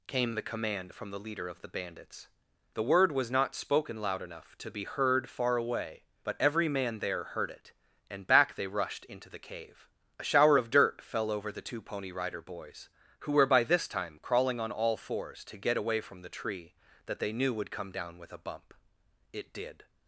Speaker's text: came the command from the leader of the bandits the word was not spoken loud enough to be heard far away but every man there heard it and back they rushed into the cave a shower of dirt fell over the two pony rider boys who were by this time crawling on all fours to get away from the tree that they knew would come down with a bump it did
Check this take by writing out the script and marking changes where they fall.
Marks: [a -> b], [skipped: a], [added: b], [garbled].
came the command from the leader of the bandits the word was not spoken loud enough to be heard far away but every man there heard it and back they rushed into the cave a shower of dirt fell over the two pony rider boys who were by this time crawling on all fours to get away from the tree that they knew would come down with a bump it did